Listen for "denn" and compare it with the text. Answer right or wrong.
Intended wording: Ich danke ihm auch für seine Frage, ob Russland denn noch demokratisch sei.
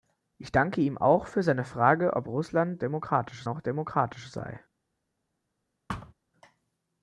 wrong